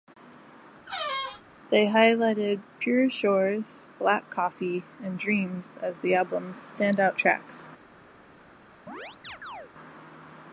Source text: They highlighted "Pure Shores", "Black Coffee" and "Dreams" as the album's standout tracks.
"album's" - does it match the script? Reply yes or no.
yes